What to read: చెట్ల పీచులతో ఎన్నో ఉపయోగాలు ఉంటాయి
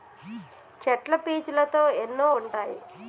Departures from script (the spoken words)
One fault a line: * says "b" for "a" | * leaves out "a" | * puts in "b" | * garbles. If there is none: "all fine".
* leaves out "ఉపయోగాలు"